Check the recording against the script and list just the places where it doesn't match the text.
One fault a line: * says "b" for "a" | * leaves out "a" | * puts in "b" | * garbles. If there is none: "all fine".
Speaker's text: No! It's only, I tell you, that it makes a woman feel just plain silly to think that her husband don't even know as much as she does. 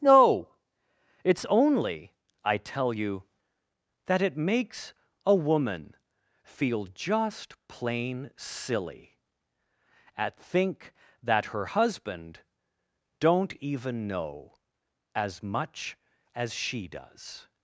* says "at" for "to"